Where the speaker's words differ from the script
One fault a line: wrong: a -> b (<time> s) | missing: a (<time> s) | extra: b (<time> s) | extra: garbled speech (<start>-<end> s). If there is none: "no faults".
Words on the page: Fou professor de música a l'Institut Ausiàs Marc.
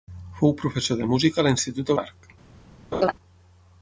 missing: Ausiàs (1.9 s)